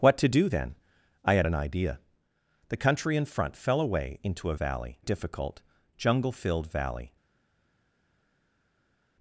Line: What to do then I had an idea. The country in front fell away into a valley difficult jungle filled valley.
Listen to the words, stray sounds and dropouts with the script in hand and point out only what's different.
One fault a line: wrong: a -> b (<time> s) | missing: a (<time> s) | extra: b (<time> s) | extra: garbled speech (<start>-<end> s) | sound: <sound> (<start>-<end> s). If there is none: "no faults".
no faults